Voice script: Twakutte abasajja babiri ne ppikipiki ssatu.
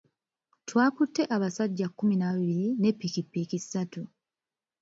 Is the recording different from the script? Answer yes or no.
yes